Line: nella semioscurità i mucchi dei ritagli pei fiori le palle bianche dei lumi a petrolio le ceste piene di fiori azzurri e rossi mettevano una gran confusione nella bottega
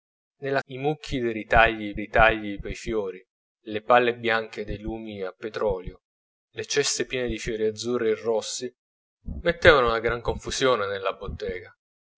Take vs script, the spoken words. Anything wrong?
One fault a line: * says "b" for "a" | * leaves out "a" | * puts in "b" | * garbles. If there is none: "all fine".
* leaves out "semioscurità"
* puts in "ritagli"